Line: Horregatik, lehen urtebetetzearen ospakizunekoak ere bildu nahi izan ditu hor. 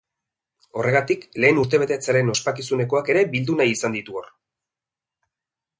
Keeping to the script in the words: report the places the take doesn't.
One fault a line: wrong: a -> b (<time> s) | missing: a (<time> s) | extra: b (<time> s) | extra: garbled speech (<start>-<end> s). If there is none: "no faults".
no faults